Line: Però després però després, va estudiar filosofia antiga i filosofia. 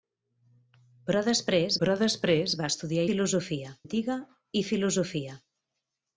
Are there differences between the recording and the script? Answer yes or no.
no